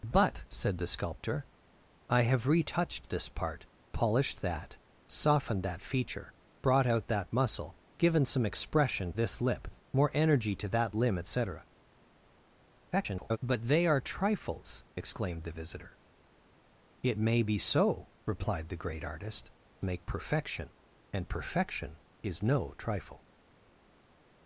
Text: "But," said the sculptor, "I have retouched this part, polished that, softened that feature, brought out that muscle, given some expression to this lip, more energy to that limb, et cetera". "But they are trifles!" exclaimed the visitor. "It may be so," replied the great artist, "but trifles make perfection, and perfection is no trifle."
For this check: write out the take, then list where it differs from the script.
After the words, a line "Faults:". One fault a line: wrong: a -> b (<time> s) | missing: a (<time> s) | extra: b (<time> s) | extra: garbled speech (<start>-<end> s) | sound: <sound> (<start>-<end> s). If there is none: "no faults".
"But," said the sculptor, "I have retouched this part, polished that, softened that feature, brought out that muscle, given some expression this lip, more energy to that limb, et cetera". [garbled] "But they are trifles!" exclaimed the visitor. "It may be so," replied the great artist, "make perfection, and perfection is no trifle."
Faults:
missing: to (9.1 s)
extra: garbled speech (12.9-13.4 s)
missing: but trifles (19.5 s)